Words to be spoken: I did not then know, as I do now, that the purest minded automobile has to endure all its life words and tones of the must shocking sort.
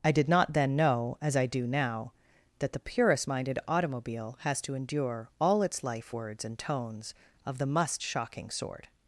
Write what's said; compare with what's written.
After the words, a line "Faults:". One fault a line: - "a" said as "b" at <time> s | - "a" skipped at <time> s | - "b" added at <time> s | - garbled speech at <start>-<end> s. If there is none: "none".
I did not then know, as I do now, that the purest minded automobile has to endure all its life words and tones of the must shocking sort.
Faults:
none